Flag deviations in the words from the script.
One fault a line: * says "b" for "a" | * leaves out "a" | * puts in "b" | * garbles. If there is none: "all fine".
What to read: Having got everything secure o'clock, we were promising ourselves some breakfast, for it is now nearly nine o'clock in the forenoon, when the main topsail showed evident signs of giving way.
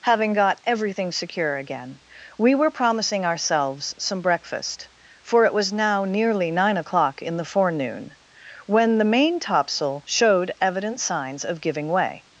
* says "again" for "o'clock"
* says "was" for "is"